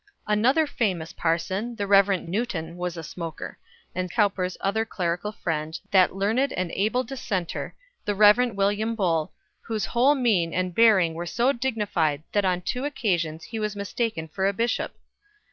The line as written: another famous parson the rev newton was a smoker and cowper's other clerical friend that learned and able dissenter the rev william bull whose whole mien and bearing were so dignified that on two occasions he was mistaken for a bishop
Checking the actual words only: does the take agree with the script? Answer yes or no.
yes